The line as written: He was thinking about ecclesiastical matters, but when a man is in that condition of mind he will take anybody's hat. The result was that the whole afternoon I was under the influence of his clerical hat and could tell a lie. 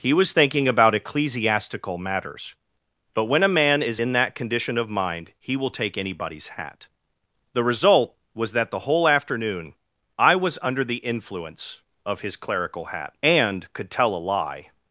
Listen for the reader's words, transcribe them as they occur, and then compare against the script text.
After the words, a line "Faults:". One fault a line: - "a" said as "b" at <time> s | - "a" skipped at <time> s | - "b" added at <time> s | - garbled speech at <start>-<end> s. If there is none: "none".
He was thinking about ecclesiastical matters, but when a man is in that condition of mind he will take anybody's hat. The result was that the whole afternoon I was under the influence of his clerical hat and could tell a lie.
Faults:
none